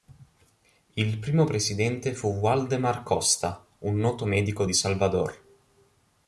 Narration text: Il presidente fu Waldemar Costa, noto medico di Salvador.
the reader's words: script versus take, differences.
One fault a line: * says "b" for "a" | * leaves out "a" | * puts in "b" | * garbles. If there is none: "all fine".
* puts in "primo"
* puts in "un"